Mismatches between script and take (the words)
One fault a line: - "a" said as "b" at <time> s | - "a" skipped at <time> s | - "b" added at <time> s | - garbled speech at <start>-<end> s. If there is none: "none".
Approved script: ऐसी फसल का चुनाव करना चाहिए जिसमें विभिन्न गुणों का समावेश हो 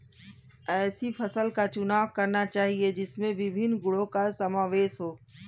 none